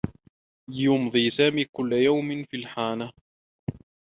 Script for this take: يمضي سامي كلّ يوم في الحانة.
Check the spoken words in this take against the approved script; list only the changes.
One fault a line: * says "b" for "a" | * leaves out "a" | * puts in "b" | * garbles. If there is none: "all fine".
all fine